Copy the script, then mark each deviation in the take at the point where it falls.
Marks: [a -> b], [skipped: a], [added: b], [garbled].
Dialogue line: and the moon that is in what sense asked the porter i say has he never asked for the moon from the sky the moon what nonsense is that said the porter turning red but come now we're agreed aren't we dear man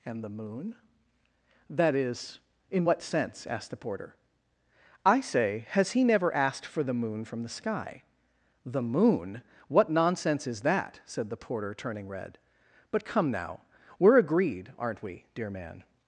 and the moon that is in what sense asked the porter i say has he never asked for the moon from the sky the moon what nonsense is that said the porter turning red but come now we're agreed aren't we dear man